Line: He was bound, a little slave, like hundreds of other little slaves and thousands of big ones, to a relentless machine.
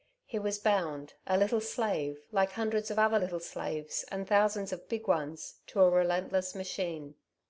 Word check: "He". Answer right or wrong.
right